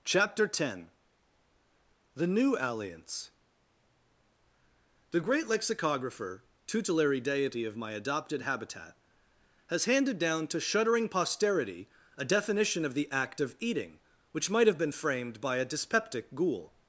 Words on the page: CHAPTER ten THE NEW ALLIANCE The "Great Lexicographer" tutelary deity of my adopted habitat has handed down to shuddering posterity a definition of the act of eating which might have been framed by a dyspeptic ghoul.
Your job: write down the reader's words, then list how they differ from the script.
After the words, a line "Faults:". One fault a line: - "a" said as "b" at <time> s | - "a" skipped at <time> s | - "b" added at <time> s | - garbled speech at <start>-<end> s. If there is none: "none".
CHAPTER ten THE NEW ALLIANCE The "Great Lexicographer" tutelary deity of my adopted habitat has handed down to shuddering posterity a definition of the act of eating which might have been framed by a dyspeptic ghoul.
Faults:
none